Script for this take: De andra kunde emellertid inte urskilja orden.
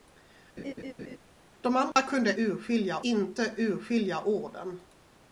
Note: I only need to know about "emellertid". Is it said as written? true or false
false